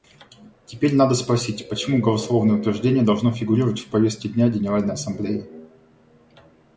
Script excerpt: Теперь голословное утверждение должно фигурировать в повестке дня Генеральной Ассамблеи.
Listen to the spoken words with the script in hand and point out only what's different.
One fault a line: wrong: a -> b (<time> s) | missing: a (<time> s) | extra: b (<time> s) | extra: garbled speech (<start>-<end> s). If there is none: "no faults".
extra: надо спросить почему (0.9 s)